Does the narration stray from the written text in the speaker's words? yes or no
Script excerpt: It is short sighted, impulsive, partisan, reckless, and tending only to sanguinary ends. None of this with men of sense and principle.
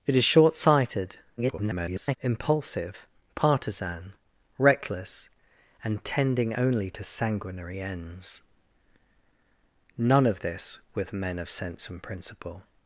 yes